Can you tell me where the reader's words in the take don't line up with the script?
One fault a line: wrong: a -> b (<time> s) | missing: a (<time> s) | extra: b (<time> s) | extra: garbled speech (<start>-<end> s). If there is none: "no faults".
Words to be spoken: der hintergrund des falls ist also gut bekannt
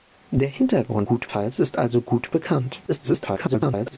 wrong: des -> gut (1.0 s)
extra: garbled speech (2.9-4.0 s)